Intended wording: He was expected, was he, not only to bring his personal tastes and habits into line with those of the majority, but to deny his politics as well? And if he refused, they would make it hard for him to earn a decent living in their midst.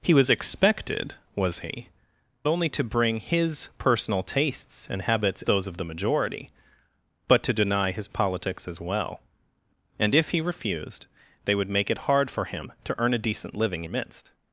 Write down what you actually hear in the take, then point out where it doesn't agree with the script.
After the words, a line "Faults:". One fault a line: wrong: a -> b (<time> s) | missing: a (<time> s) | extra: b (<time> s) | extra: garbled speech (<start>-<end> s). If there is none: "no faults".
He was expected, was he, only to bring his personal tastes and habits those of the majority, but to deny his politics as well? And if he refused, they would make it hard for him to earn a decent living midst.
Faults:
missing: not (1.9 s)
missing: into line with (5.4 s)
missing: in their (13.8 s)